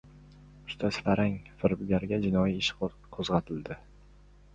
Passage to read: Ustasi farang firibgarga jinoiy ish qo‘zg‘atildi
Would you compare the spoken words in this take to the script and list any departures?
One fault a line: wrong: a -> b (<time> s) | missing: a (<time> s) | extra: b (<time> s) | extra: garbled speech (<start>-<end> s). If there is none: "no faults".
no faults